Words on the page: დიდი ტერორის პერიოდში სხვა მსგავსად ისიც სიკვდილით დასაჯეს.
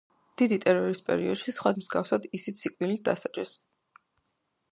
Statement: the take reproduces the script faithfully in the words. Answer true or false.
true